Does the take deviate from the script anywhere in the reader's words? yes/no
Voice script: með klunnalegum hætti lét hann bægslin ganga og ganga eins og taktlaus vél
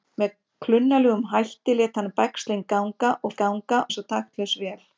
no